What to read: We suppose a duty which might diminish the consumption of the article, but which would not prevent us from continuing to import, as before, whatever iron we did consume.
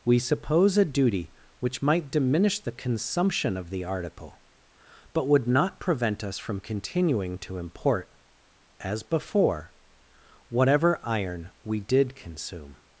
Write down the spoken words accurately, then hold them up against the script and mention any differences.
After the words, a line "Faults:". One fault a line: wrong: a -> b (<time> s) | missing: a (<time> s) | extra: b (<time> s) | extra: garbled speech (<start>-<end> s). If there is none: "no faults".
We suppose a duty which might diminish the consumption of the article, but would not prevent us from continuing to import, as before, whatever iron we did consume.
Faults:
missing: which (5.3 s)